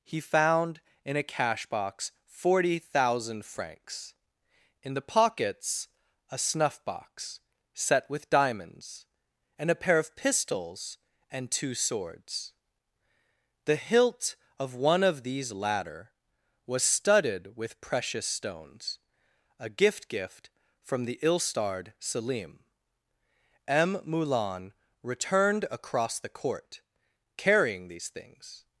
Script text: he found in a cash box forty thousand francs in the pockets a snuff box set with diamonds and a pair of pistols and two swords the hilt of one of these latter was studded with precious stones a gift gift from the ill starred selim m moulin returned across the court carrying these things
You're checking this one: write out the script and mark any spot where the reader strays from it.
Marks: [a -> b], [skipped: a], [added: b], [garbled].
he found in a cash box forty thousand francs in the pockets a snuff box set with diamonds and a pair of pistols and two swords the hilt of one of these latter was studded with precious stones a gift gift from the ill starred selim m moulin returned across the court carrying these things